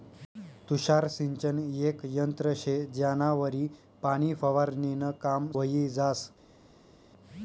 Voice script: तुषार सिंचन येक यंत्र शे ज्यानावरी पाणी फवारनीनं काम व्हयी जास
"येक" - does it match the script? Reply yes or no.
yes